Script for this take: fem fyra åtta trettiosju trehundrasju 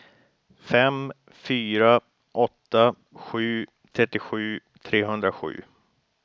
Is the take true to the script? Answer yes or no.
no